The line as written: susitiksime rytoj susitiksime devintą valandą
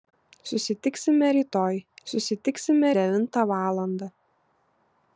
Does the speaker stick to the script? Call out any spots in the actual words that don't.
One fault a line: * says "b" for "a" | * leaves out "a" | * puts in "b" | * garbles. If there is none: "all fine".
all fine